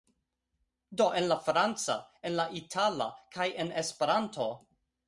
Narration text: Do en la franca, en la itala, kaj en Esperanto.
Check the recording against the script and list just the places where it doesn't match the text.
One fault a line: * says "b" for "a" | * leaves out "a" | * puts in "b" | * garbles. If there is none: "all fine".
all fine